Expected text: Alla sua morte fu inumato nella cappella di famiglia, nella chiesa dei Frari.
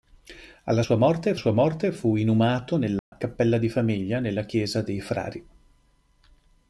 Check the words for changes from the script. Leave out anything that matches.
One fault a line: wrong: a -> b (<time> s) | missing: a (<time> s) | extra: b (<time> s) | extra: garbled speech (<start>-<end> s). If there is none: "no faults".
extra: sua morte (1.3 s)